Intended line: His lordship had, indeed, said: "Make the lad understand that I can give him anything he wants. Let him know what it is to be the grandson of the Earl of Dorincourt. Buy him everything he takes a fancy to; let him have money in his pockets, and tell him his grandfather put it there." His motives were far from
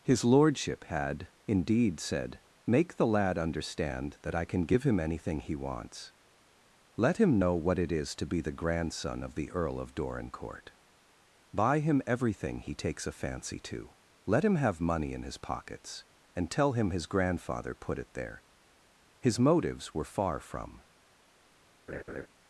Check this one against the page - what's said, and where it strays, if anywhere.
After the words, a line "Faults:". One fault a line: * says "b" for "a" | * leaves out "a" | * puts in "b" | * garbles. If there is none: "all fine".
His lordship had, indeed, said: "Make the lad understand that I can give him anything he wants. Let him know what it is to be the grandson of the Earl of Dorincourt. Buy him everything he takes a fancy to; let him have money in his pockets, and tell him his grandfather put it there." His motives were far from
Faults:
all fine